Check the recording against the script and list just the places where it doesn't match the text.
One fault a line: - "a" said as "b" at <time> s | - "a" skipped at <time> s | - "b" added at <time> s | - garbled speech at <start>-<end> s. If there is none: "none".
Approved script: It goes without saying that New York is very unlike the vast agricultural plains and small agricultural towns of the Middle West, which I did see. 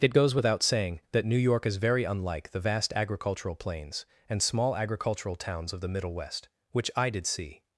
none